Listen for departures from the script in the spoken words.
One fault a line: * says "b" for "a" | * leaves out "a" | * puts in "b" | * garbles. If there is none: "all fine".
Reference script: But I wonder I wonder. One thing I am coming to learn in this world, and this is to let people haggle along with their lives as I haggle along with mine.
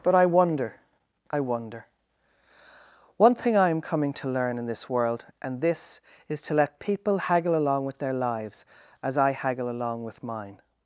all fine